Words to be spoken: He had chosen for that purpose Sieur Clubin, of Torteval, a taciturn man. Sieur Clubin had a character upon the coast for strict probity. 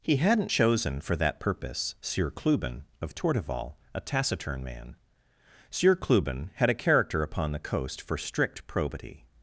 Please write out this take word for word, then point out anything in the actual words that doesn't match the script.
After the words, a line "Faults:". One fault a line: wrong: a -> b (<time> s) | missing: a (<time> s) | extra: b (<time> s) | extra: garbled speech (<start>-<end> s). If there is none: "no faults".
He hadn't chosen for that purpose Sieur Clubin, of Torteval, a taciturn man. Sieur Clubin had a character upon the coast for strict probity.
Faults:
wrong: had -> hadn't (0.1 s)